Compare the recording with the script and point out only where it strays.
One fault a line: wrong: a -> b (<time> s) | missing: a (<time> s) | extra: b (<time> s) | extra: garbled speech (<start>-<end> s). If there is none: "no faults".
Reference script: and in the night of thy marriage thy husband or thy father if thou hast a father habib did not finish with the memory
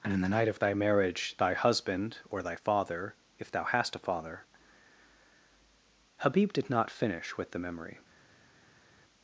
no faults